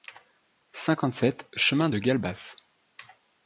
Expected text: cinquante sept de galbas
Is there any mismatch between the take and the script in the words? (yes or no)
yes